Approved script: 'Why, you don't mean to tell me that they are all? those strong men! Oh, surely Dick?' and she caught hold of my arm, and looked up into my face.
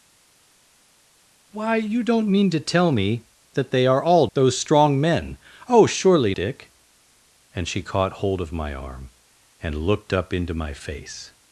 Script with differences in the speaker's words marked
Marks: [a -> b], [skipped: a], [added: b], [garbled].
'Why, you don't mean to tell me that they are all? those strong men! Oh, surely Dick?' and she caught hold of my arm, and looked up into my face.